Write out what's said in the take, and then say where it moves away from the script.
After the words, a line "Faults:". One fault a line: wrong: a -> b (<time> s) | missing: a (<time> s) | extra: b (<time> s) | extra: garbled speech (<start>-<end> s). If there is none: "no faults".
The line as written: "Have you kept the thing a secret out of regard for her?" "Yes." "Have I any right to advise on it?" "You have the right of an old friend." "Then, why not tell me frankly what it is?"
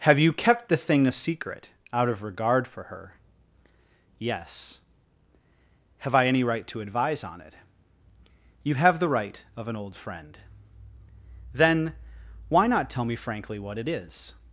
"Have you kept the thing a secret out of regard for her?" "Yes." "Have I any right to advise on it?" "You have the right of an old friend." "Then, why not tell me frankly what it is?"
Faults:
no faults